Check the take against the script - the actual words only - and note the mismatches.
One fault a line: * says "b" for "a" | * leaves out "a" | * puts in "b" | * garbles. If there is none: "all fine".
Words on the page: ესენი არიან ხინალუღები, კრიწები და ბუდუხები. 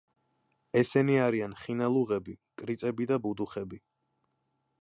all fine